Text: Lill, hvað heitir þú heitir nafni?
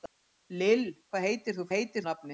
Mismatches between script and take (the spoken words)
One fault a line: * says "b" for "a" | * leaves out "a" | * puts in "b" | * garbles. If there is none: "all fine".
all fine